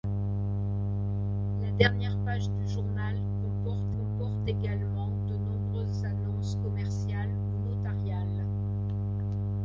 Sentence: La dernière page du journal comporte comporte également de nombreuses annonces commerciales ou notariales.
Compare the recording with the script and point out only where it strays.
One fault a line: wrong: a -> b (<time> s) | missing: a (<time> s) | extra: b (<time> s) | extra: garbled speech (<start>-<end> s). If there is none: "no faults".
no faults